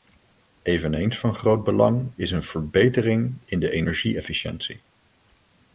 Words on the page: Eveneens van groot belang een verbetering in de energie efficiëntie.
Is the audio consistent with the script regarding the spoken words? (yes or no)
no